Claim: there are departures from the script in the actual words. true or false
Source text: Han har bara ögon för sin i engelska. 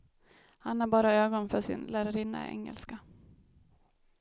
true